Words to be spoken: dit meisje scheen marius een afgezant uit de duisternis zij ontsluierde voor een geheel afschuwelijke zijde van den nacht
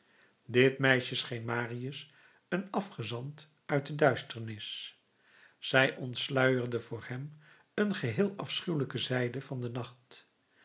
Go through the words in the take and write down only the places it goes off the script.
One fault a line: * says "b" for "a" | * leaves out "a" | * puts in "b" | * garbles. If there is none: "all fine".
* puts in "hem"